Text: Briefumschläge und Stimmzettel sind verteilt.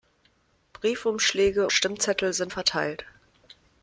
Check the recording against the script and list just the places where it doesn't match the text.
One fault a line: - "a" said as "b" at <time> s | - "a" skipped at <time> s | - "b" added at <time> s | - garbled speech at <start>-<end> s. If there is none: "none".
- "und" skipped at 1.7 s